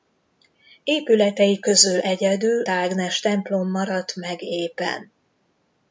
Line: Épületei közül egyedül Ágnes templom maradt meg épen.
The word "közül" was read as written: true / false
true